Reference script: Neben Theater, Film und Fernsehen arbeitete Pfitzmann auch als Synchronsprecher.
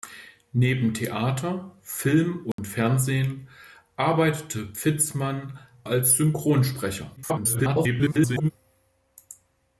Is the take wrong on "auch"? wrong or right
wrong